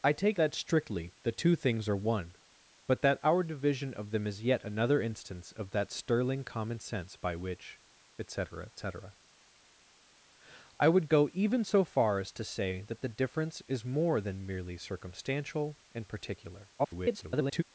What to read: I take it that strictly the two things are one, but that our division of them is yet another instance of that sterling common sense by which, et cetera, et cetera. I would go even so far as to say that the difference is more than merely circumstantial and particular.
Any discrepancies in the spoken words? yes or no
yes